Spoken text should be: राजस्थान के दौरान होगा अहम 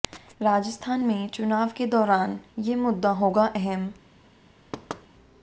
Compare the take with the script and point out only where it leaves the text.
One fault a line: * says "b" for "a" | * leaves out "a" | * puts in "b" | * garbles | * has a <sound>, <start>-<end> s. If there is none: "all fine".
* puts in "में चुनाव"
* puts in "ये मुद्दा"
* has a thud, 4.7-5.1 s